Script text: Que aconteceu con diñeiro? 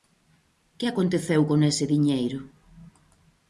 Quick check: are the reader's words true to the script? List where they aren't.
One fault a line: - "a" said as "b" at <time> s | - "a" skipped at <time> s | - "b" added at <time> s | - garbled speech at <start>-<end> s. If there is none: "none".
- "ese" added at 1.7 s